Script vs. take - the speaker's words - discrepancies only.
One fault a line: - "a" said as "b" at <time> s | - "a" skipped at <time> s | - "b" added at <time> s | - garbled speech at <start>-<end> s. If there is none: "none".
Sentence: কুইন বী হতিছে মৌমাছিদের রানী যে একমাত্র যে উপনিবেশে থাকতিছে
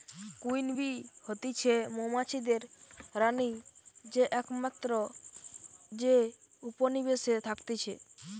none